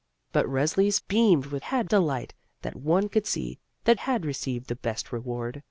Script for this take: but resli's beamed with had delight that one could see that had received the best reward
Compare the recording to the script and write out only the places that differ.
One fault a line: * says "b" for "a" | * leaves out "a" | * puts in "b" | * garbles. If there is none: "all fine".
all fine